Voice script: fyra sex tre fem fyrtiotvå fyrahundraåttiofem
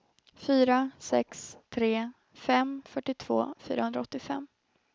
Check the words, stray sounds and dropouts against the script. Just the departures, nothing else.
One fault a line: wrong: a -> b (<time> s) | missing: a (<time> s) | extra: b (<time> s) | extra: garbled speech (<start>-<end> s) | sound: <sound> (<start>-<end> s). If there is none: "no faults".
no faults